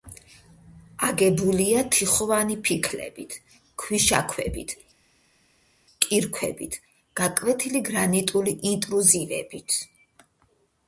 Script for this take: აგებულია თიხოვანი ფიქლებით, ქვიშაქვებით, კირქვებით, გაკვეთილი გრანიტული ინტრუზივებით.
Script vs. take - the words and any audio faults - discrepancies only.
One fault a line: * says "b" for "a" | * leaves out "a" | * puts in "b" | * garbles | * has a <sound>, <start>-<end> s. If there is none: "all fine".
all fine